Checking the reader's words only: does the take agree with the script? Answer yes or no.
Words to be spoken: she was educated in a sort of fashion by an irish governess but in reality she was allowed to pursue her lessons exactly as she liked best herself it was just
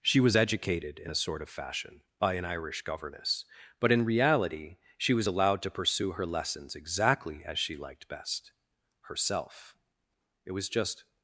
yes